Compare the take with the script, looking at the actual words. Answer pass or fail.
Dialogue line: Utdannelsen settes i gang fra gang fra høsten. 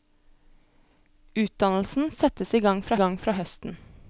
pass